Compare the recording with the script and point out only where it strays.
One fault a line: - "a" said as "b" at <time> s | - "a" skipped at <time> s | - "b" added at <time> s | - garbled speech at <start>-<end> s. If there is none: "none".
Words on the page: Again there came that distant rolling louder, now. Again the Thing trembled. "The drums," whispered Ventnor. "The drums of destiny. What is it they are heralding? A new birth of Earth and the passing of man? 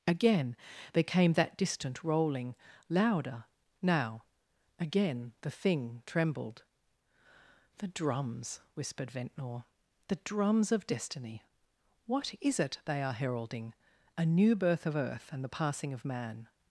none